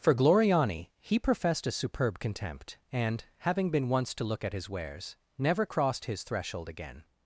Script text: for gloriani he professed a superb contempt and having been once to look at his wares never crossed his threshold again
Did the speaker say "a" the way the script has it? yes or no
yes